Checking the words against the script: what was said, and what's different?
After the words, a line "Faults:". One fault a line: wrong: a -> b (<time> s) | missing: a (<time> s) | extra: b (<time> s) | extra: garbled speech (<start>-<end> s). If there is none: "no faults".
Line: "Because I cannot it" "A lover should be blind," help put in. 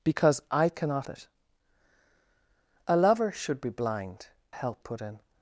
"Because I cannot it" "A lover should be blind," help put in.
Faults:
no faults